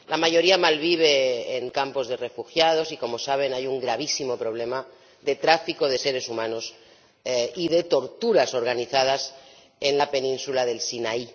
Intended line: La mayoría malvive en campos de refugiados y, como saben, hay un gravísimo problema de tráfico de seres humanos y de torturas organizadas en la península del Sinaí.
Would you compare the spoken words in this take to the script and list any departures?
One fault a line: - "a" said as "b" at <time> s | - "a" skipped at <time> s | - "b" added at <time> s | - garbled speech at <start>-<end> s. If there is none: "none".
none